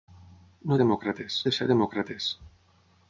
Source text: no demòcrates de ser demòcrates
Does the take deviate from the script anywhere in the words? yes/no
no